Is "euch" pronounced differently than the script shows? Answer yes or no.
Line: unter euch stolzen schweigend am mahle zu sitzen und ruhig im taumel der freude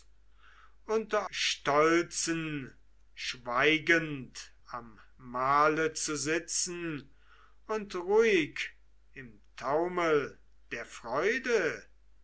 yes